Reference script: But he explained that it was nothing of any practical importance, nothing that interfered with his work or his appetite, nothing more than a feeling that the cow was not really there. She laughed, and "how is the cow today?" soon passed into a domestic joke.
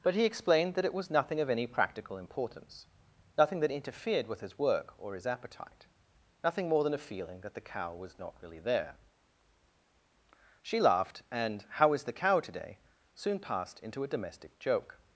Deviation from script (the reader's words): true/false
false